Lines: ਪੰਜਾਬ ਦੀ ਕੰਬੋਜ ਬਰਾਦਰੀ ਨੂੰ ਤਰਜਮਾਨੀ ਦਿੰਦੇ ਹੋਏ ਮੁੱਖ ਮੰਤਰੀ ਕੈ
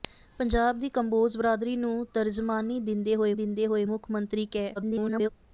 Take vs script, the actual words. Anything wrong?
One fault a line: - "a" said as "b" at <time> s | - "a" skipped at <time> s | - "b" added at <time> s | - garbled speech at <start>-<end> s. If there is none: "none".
- "ਦਿੰਦੇ ਹੋਏ" added at 3.3 s
- garbled speech at 4.8-5.3 s